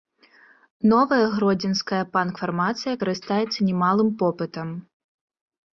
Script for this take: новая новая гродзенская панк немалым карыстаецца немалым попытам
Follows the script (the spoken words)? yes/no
no